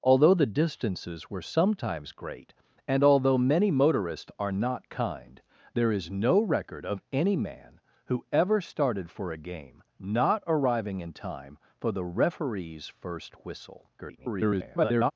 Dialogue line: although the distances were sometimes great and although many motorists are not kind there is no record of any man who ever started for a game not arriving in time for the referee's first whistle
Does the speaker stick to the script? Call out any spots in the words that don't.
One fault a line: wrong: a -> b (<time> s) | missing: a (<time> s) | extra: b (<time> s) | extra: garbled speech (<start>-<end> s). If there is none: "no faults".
extra: garbled speech (14.0-15.1 s)